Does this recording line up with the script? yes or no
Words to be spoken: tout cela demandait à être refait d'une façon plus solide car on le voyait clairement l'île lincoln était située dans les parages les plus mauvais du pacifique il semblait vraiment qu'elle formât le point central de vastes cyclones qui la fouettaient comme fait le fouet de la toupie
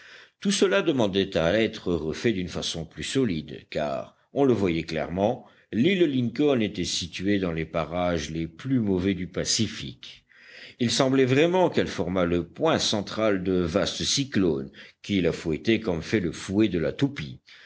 yes